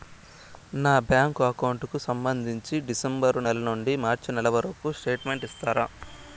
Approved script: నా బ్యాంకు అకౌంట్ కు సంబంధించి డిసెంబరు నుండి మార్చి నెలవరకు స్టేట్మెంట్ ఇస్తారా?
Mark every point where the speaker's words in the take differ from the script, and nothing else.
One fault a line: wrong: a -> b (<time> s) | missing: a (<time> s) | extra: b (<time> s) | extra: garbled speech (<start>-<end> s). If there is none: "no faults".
extra: నెల (3.4 s)